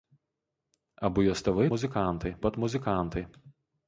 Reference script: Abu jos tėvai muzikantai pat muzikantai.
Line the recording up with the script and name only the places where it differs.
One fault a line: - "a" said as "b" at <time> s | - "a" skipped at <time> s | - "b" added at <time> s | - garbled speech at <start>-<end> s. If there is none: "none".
none